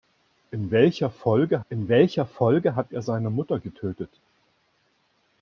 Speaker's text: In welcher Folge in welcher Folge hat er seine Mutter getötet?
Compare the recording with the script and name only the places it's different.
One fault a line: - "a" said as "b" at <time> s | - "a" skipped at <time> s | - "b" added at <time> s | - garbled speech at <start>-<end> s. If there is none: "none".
none